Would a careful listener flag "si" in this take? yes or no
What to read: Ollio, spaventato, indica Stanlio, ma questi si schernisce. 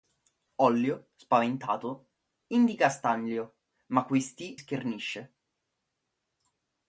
yes